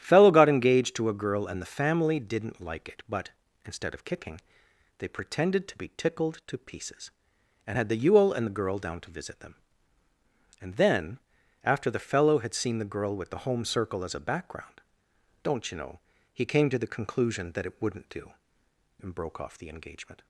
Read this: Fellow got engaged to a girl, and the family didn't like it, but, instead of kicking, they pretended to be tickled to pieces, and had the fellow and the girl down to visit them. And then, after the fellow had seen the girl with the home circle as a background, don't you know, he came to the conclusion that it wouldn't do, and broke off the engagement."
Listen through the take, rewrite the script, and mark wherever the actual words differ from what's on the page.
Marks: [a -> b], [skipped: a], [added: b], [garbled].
Fellow got engaged to a girl, and the family didn't like it, but, instead of kicking, they pretended to be tickled to pieces, and had the [fellow -> yule] and the girl down to visit them. And then, after the fellow had seen the girl with the home circle as a background, don't you know, he came to the conclusion that it wouldn't do, and broke off the engagement."